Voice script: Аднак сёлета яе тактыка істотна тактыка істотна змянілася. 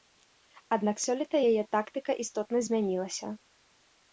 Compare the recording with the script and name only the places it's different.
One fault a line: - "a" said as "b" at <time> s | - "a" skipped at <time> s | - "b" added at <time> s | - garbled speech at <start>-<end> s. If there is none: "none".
- "тактыка істотна" skipped at 2.6 s